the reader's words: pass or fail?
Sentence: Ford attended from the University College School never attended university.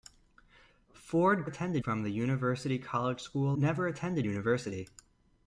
pass